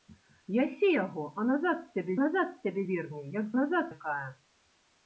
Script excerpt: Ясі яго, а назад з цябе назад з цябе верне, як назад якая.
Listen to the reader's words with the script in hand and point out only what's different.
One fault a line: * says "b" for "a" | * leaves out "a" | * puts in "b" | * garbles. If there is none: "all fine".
all fine